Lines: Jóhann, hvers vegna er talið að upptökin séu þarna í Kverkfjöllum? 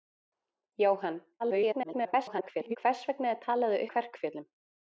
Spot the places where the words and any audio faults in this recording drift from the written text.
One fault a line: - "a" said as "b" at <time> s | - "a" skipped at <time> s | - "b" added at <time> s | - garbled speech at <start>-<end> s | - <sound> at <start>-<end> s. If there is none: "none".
- garbled speech at 1.4-2.8 s
- "upptökin séu þarna" skipped at 3.8 s